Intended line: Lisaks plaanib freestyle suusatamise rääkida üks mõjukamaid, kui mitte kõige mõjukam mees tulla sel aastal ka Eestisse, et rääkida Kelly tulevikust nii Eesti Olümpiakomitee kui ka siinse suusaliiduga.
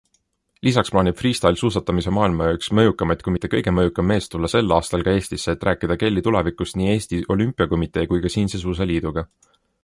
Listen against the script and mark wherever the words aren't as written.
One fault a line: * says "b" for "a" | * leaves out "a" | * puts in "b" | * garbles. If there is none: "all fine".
* says "maailma" for "rääkida"